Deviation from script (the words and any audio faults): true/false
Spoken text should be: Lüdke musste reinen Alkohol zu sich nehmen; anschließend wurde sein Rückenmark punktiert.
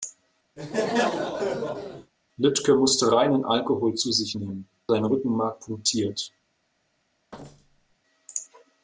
true